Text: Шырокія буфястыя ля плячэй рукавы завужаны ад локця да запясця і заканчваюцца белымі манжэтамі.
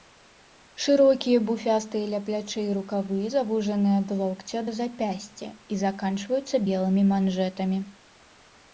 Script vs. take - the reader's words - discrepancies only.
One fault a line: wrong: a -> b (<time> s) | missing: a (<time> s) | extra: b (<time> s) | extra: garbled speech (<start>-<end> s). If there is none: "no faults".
no faults